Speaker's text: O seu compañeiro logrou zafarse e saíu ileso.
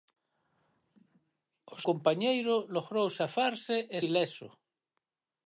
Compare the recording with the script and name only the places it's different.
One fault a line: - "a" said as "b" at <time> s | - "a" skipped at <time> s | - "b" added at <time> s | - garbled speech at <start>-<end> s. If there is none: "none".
- "seu" skipped at 1.8 s
- "saíu" skipped at 4.0 s